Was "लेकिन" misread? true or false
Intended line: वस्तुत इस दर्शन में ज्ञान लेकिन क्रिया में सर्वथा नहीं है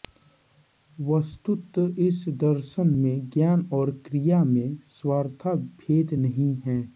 true